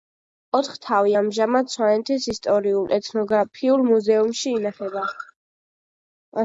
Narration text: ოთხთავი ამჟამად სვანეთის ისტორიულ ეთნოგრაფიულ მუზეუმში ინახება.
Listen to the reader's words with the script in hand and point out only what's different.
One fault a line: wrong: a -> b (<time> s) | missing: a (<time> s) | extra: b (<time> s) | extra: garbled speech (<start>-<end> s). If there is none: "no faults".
no faults